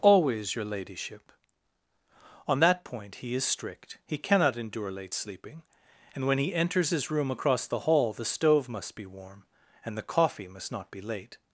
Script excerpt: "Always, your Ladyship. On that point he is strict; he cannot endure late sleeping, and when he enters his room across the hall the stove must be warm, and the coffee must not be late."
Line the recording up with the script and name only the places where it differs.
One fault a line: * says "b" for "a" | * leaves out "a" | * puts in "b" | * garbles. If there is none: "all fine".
all fine